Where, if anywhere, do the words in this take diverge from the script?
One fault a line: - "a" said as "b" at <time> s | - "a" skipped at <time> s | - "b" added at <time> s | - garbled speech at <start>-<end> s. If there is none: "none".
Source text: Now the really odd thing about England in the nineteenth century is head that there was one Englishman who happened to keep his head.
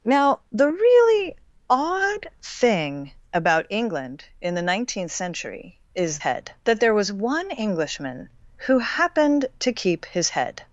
none